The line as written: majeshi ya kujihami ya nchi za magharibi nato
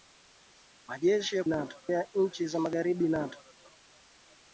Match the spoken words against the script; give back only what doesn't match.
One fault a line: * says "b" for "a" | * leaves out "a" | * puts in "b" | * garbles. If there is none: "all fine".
* says "nato" for "kujihami"